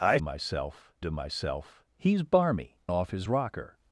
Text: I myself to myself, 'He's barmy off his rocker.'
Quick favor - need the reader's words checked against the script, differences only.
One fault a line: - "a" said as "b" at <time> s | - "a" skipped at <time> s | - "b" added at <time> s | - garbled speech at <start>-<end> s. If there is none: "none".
none